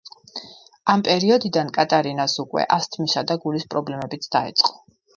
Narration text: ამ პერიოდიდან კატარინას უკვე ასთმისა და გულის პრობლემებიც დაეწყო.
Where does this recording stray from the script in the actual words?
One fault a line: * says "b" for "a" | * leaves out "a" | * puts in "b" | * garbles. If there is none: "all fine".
all fine